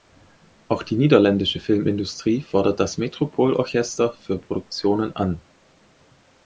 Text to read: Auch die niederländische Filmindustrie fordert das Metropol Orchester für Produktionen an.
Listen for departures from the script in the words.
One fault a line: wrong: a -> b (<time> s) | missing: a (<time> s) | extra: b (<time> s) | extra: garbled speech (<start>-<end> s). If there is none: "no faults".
no faults